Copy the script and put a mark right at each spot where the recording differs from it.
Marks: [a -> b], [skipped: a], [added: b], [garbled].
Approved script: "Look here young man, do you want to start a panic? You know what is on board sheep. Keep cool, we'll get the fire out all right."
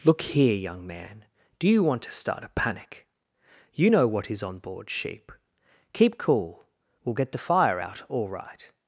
"Look here young man, do you want to start a panic? You know what is on board sheep. Keep cool, we'll get the fire out all right."